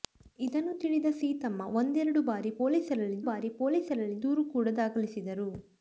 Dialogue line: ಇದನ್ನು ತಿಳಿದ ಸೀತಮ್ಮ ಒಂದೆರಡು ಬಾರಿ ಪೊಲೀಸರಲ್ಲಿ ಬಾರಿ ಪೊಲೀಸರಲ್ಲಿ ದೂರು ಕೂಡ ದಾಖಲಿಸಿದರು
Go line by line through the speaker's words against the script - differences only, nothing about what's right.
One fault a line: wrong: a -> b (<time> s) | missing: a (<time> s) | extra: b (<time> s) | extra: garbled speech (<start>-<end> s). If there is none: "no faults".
no faults